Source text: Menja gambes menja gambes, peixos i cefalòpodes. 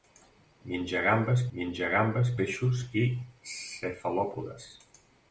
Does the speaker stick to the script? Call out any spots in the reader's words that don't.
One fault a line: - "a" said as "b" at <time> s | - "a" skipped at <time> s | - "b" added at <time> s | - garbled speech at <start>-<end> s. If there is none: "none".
none